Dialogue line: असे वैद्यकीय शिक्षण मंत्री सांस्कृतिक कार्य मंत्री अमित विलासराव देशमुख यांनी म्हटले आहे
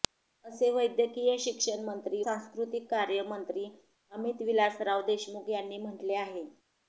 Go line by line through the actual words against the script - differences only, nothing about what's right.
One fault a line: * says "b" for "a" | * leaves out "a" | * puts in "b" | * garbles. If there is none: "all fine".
all fine